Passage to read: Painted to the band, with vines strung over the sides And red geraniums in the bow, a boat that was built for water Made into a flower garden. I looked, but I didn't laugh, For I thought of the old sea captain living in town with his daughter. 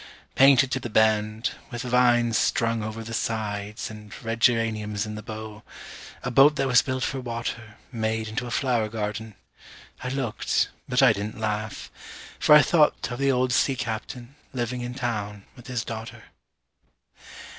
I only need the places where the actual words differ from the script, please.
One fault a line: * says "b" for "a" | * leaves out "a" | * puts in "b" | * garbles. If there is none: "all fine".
all fine